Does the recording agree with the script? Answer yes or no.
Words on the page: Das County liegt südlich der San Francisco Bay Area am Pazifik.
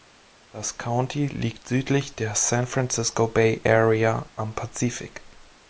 yes